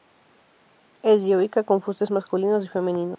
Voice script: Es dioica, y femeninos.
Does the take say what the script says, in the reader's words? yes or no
no